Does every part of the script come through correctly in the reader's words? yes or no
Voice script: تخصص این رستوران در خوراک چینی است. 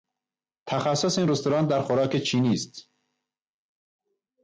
yes